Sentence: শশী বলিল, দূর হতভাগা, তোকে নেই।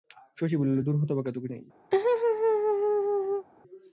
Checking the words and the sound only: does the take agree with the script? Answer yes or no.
no